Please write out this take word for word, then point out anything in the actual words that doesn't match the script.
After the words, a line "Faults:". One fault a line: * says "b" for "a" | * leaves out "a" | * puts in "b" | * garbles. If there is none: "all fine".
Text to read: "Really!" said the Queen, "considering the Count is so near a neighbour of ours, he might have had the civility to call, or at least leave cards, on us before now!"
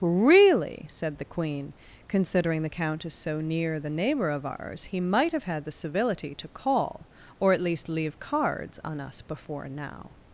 "Really!" said the Queen, "considering the Count is so near the neighbour of ours, he might have had the civility to call, or at least leave cards, on us before now!"
Faults:
* says "the" for "a"